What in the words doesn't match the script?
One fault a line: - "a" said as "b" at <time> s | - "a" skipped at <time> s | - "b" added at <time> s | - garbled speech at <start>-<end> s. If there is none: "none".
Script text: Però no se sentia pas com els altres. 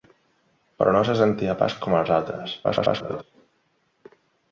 - garbled speech at 2.6-3.2 s